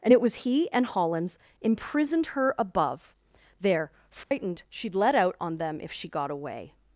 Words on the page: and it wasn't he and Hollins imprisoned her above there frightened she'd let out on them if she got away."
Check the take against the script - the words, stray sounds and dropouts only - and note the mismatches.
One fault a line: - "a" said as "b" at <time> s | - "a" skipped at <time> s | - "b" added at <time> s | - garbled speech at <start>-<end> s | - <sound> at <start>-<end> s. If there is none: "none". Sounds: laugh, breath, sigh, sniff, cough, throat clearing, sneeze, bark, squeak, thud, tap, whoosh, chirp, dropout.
- "wasn't" said as "was" at 0.2 s
- dropout at 4.2-4.3 s